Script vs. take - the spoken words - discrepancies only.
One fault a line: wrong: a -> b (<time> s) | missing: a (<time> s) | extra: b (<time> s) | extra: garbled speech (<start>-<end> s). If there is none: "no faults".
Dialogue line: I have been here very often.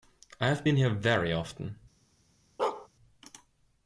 no faults